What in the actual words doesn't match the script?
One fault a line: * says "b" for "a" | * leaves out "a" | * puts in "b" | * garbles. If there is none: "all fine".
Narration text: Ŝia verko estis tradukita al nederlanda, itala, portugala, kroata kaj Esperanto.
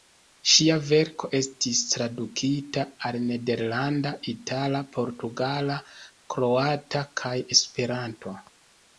all fine